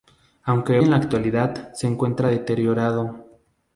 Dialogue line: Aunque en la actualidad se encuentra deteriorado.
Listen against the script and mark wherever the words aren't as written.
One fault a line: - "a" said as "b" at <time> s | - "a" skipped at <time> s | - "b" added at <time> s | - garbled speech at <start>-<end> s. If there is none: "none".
none